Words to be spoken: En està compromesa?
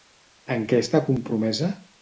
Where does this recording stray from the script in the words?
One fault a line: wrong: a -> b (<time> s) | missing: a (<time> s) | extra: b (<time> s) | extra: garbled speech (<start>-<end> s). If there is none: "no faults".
extra: què (0.7 s)